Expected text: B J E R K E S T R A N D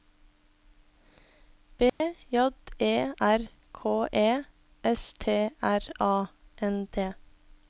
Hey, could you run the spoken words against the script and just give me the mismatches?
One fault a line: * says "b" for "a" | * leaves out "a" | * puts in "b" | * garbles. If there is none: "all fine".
all fine